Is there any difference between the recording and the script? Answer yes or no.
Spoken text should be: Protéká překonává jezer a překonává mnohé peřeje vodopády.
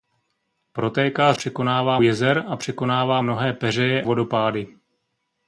no